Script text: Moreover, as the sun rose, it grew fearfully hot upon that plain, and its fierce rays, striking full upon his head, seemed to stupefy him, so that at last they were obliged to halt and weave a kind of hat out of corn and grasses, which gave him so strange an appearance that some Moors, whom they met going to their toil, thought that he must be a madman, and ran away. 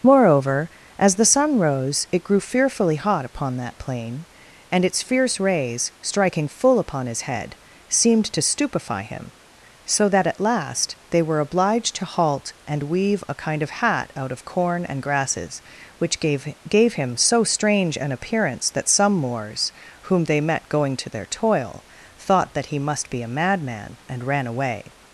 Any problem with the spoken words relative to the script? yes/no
yes